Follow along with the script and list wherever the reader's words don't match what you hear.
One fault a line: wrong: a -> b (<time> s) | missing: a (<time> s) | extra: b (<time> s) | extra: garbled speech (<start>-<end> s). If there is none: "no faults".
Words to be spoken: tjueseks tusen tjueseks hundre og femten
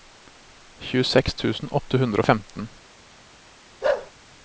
wrong: tjueseks -> åtte (1.8 s)